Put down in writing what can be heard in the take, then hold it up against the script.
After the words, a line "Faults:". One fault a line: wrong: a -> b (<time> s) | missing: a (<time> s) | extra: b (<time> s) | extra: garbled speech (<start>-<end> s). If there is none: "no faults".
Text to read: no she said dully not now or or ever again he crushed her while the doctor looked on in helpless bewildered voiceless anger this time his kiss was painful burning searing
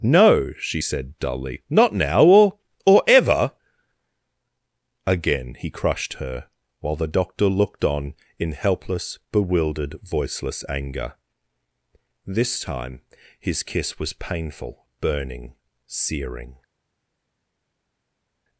no she said dully not now or or ever again he crushed her while the doctor looked on in helpless bewildered voiceless anger this time his kiss was painful burning searing
Faults:
no faults